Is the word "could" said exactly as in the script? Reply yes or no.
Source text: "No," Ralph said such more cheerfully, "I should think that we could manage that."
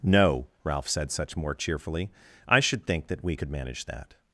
yes